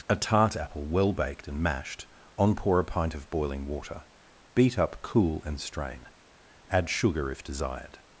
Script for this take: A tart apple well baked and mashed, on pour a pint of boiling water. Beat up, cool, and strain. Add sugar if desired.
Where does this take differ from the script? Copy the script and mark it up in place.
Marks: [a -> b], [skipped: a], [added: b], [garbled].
A tart apple well baked and mashed, on pour a pint of boiling water. Beat up, cool, and strain. Add sugar if desired.